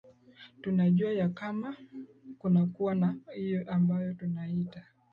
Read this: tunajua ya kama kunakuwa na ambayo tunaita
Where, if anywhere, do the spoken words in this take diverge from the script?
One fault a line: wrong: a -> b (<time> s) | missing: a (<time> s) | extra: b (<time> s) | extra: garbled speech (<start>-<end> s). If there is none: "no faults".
extra: hiyo (3.4 s)